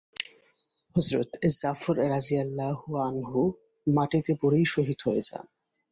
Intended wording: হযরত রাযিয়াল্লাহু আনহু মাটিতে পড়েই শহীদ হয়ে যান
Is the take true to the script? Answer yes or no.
no